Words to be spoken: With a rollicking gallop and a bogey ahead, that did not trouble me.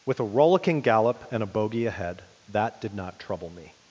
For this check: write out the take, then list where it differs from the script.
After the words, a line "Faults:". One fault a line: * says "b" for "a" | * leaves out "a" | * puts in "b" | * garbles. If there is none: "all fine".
With a rollicking gallop and a bogey ahead, that did not trouble me.
Faults:
all fine